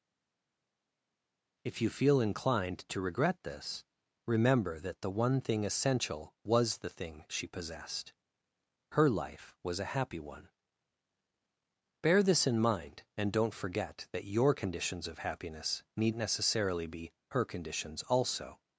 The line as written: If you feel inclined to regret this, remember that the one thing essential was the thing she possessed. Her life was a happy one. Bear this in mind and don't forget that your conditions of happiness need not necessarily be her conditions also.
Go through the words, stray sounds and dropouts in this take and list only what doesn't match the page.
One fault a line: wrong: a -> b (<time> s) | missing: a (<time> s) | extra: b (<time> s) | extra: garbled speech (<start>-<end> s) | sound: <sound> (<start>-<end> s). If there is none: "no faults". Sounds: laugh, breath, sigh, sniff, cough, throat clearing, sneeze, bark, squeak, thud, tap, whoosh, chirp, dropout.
missing: not (16.1 s)